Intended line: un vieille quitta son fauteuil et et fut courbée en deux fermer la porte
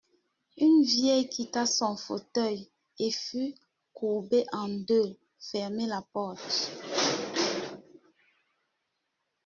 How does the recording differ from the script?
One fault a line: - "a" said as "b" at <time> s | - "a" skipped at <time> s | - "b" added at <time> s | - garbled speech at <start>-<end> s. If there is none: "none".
- "un" said as "une" at 0.6 s
- "et" skipped at 3.1 s